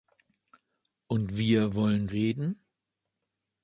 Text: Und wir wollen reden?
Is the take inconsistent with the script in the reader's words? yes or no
no